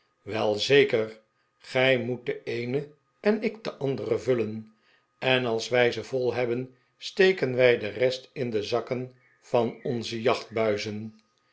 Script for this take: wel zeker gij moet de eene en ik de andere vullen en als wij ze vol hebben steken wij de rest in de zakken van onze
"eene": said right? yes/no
yes